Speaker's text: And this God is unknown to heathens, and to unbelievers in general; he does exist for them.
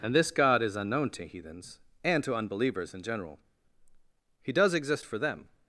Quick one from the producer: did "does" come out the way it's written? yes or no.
yes